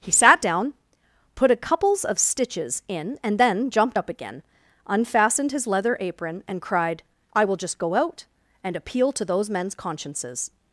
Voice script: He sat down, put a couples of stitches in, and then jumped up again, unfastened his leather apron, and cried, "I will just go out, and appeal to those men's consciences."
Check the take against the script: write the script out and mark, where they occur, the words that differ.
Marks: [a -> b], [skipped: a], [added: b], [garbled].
He sat down, put a couples of stitches in, and then jumped up again, unfastened his leather apron, and cried, "I will just go out, and appeal to those men's consciences."